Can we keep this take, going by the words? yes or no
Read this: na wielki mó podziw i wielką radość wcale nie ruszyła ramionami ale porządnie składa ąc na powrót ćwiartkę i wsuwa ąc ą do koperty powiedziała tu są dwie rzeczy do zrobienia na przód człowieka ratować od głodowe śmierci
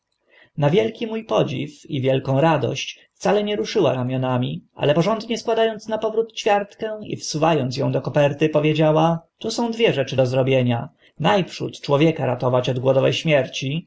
yes